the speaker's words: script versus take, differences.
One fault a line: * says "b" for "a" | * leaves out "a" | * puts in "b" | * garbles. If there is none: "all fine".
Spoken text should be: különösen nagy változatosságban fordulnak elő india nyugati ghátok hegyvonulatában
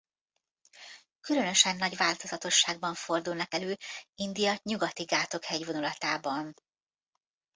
all fine